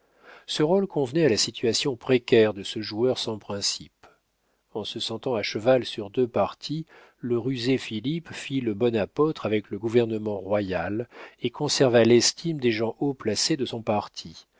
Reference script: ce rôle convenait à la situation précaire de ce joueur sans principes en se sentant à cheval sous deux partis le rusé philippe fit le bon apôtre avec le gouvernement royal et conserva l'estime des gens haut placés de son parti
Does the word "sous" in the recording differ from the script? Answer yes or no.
yes